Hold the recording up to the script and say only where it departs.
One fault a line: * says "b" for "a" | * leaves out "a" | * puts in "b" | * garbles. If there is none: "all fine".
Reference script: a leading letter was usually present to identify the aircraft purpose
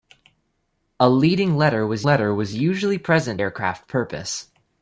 * puts in "letter was"
* leaves out "to identify the"